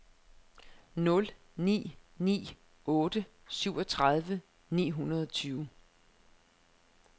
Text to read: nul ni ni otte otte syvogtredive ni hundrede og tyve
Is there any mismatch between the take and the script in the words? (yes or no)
yes